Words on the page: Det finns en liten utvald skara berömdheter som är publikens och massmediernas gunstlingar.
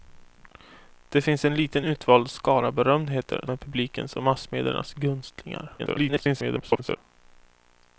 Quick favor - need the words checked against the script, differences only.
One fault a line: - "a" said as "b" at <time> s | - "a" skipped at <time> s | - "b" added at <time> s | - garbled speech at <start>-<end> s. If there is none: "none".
- "som" skipped at 3.5 s
- garbled speech at 5.8-7.0 s